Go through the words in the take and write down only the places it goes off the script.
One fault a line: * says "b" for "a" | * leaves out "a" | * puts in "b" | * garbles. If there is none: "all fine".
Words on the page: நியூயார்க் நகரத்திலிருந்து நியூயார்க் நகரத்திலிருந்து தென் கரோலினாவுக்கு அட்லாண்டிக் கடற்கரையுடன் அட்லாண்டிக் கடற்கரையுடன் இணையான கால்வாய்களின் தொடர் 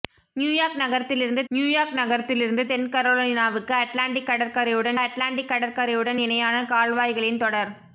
all fine